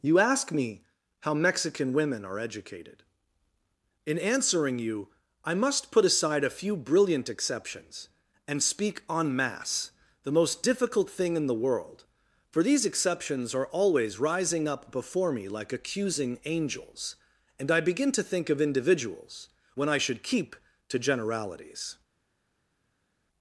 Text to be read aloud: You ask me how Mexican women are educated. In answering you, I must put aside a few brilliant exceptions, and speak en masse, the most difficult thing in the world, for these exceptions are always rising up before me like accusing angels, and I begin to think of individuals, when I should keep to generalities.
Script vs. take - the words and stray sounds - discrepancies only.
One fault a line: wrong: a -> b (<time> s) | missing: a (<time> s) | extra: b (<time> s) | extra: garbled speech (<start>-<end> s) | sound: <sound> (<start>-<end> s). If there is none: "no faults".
no faults